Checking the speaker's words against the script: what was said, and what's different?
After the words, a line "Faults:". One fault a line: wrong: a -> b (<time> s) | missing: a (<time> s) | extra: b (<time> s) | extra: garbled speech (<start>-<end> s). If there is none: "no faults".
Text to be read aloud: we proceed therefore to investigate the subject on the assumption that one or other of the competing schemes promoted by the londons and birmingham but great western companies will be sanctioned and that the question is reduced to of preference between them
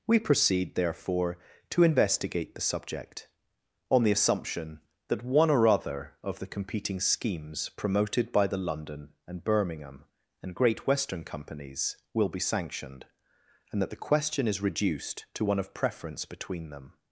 we proceed therefore to investigate the subject on the assumption that one or other of the competing schemes promoted by the london and birmingham and great western companies will be sanctioned and that the question is reduced to one of preference between them
Faults:
wrong: londons -> london (8.6 s)
wrong: but -> and (10.4 s)
extra: one (15.4 s)